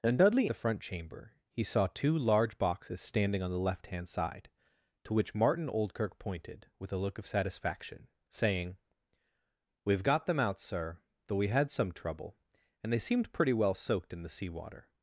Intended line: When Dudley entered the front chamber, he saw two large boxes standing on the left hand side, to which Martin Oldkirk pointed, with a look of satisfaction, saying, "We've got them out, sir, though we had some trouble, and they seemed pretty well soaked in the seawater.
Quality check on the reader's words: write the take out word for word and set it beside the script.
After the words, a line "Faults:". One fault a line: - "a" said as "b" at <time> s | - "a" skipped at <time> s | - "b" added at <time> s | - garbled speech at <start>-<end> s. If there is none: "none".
When Dudley the front chamber, he saw two large boxes standing on the left hand side, to which Martin Oldkirk pointed, with a look of satisfaction, saying, "We've got them out, sir, though we had some trouble, and they seemed pretty well soaked in the seawater.
Faults:
- "entered" skipped at 0.5 s